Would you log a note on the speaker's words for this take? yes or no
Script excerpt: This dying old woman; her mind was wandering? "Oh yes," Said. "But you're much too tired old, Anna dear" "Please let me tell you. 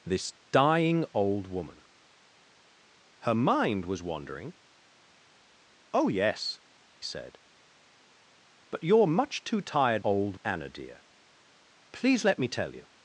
no